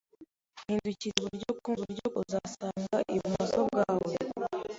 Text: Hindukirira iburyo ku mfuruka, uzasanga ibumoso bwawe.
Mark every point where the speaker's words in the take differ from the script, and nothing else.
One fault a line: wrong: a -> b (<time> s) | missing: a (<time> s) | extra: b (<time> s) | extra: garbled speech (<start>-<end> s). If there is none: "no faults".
wrong: mfuruka -> iburyo (1.8 s)